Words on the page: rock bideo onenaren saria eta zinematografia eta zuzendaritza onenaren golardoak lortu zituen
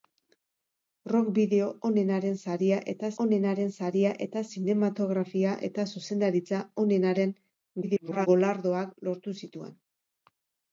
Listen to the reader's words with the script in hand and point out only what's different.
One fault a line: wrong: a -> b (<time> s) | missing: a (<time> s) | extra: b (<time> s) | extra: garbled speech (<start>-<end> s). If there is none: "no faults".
extra: onenaren saria eta (3.2 s)
extra: garbled speech (7.8-8.3 s)